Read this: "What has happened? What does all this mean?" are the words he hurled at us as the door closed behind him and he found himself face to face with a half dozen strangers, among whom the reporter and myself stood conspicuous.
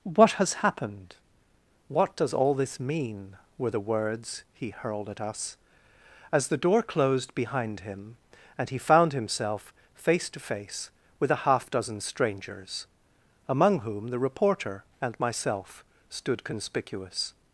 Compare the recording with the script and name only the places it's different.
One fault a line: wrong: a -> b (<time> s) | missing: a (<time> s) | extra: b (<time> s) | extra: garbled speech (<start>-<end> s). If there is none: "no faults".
wrong: are -> were (3.6 s)